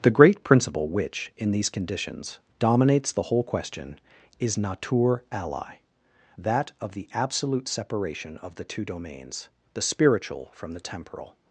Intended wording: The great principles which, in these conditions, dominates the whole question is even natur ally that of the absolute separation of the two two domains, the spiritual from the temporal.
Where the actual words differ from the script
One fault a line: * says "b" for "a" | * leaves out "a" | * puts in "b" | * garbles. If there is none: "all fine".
* says "principle" for "principles"
* leaves out "even"
* leaves out "two"